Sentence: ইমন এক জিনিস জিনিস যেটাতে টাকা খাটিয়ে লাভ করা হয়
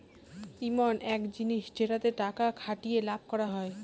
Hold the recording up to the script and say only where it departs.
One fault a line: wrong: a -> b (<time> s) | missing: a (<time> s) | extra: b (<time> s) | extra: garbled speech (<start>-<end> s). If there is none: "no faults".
missing: জিনিস (1.6 s)